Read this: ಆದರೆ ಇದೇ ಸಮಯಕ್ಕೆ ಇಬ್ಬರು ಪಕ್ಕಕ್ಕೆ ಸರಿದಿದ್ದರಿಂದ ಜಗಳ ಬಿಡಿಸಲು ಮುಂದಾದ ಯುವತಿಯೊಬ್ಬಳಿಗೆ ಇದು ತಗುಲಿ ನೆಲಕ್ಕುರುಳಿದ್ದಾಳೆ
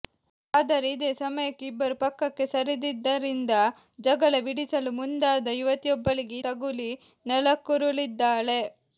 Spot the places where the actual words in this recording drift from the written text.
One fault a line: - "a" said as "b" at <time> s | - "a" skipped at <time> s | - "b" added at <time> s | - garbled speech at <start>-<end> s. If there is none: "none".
- "ಇದು" skipped at 6.4 s